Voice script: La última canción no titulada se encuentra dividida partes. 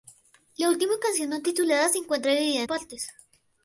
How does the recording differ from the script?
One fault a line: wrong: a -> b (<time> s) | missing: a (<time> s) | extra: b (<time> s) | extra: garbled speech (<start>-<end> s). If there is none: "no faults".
no faults